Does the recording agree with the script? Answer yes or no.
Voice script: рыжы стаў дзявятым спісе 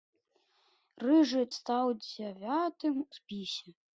yes